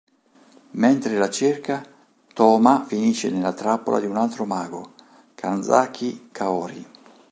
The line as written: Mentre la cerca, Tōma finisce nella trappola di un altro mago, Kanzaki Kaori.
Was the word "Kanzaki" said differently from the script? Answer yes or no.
no